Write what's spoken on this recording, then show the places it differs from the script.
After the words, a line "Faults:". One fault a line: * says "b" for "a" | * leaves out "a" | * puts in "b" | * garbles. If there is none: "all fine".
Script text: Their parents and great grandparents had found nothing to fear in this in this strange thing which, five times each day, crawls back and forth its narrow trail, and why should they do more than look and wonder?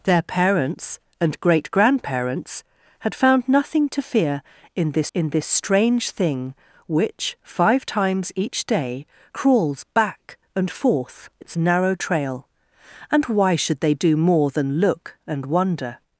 Their parents and great grandparents had found nothing to fear in this in this strange thing which, five times each day, crawls back and forth its narrow trail, and why should they do more than look and wonder?
Faults:
all fine